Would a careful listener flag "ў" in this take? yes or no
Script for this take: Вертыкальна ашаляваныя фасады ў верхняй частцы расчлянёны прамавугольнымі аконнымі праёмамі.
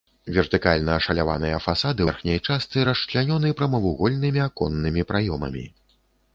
yes